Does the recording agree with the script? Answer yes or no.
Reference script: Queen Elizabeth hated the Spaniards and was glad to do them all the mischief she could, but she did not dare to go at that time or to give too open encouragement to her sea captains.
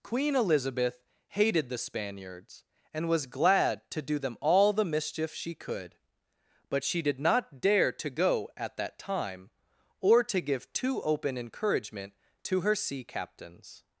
yes